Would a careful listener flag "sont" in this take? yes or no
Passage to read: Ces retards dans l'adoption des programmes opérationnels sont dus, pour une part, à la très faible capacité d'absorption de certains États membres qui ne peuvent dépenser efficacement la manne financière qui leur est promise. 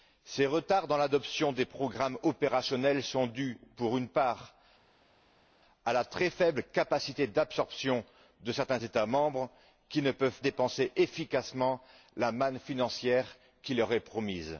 no